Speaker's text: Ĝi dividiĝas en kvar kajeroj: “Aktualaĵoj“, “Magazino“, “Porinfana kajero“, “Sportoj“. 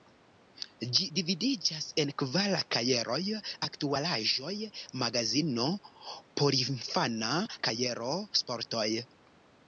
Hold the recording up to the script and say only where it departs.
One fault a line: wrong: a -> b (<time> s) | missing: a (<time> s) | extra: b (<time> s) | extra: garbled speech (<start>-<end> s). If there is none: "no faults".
no faults